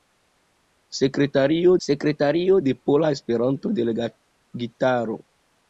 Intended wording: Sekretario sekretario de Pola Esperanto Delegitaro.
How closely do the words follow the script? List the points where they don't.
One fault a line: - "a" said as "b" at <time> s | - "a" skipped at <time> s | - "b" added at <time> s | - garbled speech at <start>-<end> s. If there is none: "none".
none